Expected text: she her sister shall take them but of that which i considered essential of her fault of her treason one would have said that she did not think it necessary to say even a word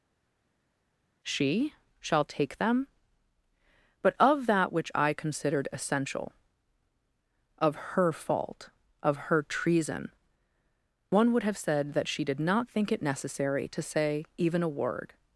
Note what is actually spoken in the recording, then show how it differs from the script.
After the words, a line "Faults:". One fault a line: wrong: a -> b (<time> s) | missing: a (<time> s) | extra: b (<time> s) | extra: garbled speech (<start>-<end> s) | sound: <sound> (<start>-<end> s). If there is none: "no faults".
she shall take them but of that which i considered essential of her fault of her treason one would have said that she did not think it necessary to say even a word
Faults:
missing: her sister (1.7 s)